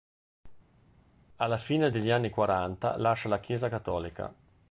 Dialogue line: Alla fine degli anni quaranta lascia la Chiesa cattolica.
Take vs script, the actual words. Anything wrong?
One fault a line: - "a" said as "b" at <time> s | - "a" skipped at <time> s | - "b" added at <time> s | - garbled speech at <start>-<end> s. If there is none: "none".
none